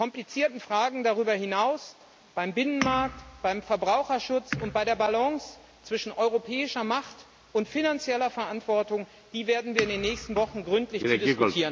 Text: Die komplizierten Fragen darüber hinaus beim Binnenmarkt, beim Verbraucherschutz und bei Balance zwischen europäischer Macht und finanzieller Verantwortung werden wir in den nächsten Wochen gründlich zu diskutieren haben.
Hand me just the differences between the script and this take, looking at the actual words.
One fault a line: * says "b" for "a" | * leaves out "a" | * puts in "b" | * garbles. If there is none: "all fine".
* puts in "der"